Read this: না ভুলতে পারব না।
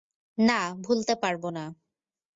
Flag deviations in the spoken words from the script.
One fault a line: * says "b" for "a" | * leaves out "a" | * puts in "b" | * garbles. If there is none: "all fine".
all fine